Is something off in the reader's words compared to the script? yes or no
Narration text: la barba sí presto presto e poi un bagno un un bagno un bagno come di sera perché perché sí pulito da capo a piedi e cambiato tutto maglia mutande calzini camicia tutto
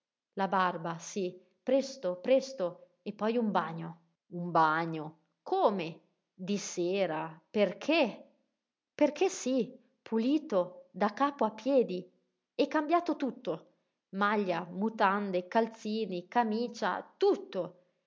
yes